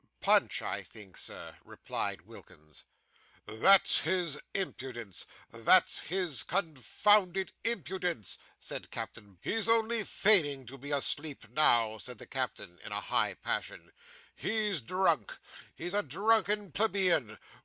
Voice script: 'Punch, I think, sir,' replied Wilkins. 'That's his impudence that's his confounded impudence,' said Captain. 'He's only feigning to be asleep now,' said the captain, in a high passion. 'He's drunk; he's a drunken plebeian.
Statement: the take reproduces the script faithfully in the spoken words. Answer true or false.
true